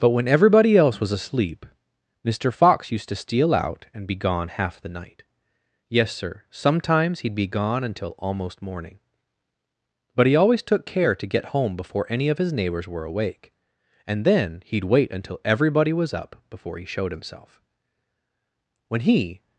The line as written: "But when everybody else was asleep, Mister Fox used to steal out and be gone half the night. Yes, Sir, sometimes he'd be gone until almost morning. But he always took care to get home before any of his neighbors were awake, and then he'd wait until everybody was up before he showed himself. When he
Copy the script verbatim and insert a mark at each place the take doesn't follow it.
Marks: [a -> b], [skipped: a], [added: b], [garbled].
"But when everybody else was asleep, Mister Fox used to steal out and be gone half the night. Yes, Sir, sometimes he'd be gone until almost morning. But he always took care to get home before any of his neighbors were awake, and then he'd wait until everybody was up before he showed himself. When he